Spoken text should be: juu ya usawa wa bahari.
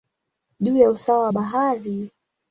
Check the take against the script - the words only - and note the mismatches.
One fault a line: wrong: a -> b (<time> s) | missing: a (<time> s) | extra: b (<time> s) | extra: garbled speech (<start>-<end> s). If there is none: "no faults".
no faults